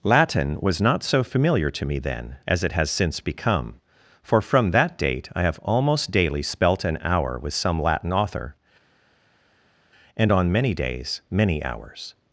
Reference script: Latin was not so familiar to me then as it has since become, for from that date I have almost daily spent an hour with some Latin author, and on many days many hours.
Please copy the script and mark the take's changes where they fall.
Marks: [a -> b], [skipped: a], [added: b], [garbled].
Latin was not so familiar to me then as it has since become, for from that date I have almost daily [spent -> spelt] an hour with some Latin author, and on many days many hours.